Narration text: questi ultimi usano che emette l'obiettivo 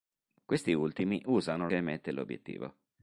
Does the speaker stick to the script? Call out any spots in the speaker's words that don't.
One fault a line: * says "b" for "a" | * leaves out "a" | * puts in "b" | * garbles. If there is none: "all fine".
all fine